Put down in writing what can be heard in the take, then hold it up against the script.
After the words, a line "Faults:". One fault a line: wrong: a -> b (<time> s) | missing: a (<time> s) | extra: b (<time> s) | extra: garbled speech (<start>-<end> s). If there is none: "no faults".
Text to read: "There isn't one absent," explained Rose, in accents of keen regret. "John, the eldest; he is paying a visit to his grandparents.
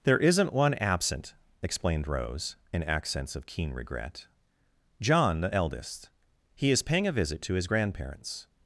"There isn't one absent," explained Rose, in accents of keen regret. "John, the eldest; he is paying a visit to his grandparents.
Faults:
no faults